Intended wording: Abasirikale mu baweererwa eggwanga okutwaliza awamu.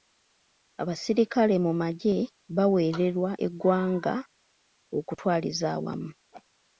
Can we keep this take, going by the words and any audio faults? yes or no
no